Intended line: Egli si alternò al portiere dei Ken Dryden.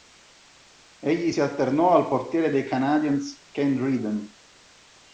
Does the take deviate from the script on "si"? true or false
false